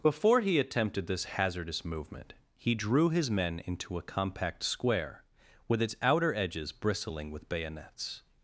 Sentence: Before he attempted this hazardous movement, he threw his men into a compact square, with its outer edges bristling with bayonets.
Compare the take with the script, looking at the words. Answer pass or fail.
fail